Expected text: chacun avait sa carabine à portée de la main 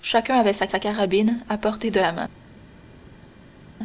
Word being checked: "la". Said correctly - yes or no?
yes